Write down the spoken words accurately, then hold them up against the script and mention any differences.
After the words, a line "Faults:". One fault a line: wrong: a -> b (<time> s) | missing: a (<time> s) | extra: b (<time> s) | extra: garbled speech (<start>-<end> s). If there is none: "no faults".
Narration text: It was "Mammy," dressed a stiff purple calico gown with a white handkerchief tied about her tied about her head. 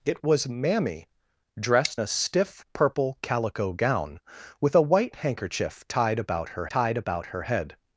It was "Mammy," dressed a stiff purple calico gown with a white handkerchief tied about her tied about her head.
Faults:
no faults